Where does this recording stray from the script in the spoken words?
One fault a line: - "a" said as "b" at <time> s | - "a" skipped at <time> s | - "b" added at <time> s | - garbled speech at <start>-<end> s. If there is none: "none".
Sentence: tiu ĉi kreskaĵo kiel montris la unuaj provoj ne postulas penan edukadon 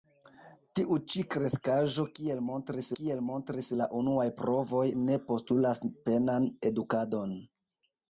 - "kiel montris" added at 3.0 s